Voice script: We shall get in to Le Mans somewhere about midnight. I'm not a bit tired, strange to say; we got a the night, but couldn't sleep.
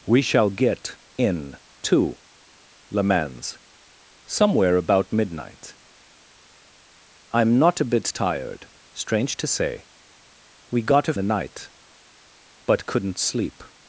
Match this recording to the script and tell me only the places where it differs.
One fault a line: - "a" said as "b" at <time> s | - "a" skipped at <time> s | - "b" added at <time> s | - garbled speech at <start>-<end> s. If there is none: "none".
none